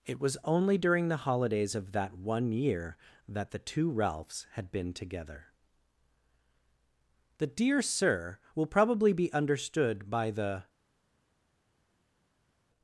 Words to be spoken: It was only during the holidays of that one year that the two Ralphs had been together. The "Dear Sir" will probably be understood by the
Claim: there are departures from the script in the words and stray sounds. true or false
false